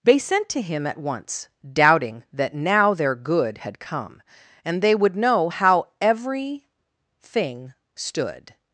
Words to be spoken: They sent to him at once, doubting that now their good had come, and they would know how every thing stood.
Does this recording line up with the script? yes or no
yes